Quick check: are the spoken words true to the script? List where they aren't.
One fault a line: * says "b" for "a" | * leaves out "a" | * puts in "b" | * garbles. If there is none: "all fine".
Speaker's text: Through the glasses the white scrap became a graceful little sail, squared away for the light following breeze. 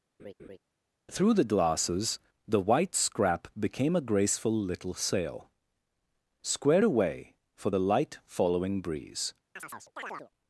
all fine